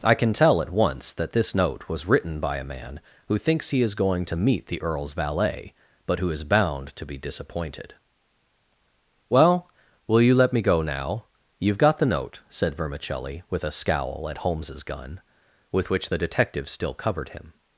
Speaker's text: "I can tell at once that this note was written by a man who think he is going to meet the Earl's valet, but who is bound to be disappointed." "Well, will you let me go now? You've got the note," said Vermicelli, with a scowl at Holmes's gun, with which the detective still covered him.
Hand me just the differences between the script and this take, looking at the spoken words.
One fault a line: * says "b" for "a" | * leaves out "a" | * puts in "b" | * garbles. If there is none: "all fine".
* says "thinks" for "think"